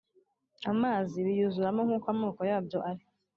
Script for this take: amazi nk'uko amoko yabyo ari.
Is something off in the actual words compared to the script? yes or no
yes